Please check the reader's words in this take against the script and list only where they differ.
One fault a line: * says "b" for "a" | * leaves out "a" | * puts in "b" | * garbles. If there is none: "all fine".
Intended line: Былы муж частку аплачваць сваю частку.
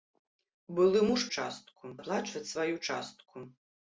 all fine